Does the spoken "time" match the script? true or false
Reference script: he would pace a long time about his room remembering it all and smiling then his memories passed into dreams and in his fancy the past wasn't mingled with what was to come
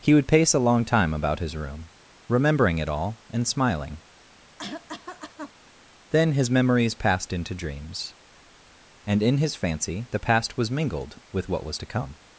true